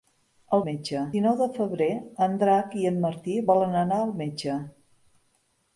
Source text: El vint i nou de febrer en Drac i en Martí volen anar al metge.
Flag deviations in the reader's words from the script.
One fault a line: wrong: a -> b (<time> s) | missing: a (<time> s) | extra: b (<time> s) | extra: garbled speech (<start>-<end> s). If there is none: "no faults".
wrong: vint -> metge (0.7 s)